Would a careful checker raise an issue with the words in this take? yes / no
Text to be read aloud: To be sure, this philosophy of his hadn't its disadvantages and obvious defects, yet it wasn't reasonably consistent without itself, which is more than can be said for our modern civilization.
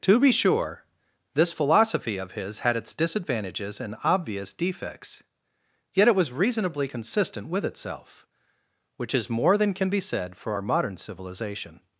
yes